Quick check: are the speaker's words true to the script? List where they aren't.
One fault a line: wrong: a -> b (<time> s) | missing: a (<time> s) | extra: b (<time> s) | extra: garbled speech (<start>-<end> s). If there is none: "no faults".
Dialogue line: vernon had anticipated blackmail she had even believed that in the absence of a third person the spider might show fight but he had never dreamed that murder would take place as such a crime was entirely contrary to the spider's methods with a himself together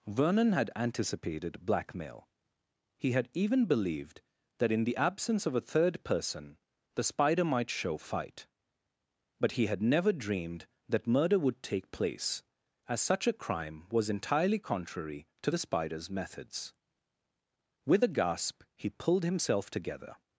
wrong: she -> he (3.0 s)
extra: gasp he pulled (18.1 s)